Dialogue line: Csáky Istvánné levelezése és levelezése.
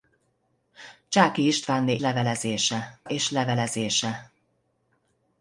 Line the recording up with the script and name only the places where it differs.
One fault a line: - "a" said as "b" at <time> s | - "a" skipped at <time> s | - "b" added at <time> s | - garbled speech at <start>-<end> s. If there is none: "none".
none